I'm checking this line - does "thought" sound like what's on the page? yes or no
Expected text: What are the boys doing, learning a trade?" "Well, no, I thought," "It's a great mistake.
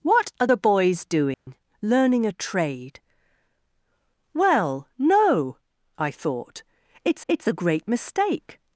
yes